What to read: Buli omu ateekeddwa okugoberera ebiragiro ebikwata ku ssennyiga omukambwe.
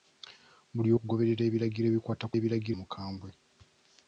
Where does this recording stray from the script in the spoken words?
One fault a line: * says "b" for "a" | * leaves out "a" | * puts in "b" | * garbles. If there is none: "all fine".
* leaves out "omu ateekeddwa"
* says "ebiragiro" for "ssennyiga"